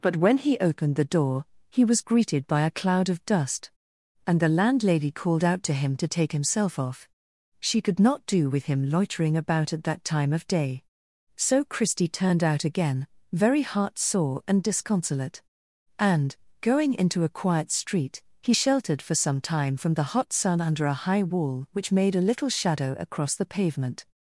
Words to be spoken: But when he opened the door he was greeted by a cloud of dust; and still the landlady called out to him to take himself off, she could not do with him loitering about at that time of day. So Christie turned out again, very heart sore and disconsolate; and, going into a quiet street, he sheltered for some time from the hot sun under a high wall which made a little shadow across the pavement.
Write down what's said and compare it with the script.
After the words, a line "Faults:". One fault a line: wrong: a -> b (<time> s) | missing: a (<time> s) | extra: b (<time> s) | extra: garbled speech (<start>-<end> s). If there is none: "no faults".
But when he opened the door he was greeted by a cloud of dust; and the landlady called out to him to take himself off, she could not do with him loitering about at that time of day. So Christie turned out again, very heart sore and disconsolate; and, going into a quiet street, he sheltered for some time from the hot sun under a high wall which made a little shadow across the pavement.
Faults:
missing: still (4.4 s)